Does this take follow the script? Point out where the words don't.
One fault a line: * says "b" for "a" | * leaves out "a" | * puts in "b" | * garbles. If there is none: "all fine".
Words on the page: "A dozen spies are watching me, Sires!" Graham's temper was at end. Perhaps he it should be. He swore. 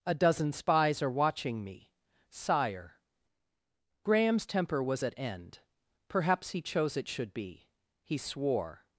* says "Sire" for "Sires"
* puts in "chose"